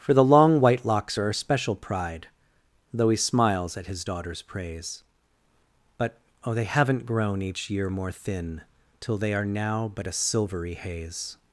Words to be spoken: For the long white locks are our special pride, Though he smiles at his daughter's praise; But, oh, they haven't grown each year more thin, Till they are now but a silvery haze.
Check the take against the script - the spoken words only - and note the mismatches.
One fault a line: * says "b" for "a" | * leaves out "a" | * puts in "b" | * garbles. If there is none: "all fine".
all fine